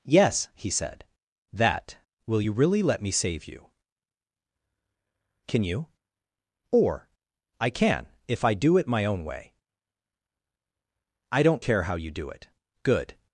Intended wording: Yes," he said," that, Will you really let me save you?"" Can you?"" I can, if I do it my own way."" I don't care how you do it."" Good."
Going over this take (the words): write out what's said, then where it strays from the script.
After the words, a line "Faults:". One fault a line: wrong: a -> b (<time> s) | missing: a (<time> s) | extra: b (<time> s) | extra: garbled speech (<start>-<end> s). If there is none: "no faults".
Yes," he said," that, Will you really let me save you?"" Can you?"" or I can, if I do it my own way."" I don't care how you do it."" Good."
Faults:
extra: or (6.7 s)